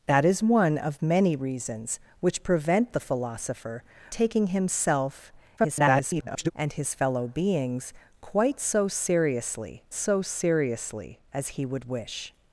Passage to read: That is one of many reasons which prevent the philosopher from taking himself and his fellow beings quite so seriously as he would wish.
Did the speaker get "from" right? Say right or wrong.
wrong